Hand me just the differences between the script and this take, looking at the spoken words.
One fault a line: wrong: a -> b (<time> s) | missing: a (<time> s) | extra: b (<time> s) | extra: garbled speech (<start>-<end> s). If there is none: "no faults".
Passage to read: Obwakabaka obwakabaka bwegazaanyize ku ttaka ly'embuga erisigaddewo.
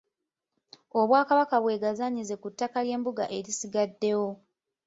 missing: obwakabaka (1.6 s)